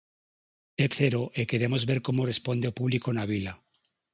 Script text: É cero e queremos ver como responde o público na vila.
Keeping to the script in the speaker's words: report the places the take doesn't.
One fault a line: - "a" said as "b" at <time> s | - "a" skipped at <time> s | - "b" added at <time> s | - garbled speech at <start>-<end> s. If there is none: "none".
none